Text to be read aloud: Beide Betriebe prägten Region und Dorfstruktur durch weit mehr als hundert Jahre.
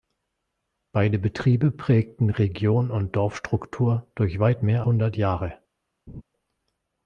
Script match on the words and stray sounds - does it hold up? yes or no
no